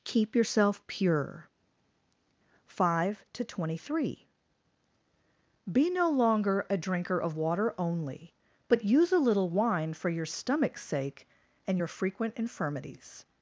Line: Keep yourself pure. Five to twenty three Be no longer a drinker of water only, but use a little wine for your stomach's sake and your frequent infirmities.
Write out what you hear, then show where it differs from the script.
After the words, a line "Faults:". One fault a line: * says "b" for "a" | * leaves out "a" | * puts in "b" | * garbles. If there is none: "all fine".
Keep yourself pure. Five to twenty three Be no longer a drinker of water only, but use a little wine for your stomach's sake and your frequent infirmities.
Faults:
all fine